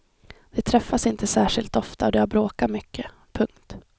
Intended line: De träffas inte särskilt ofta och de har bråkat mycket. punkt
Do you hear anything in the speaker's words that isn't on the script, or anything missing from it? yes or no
no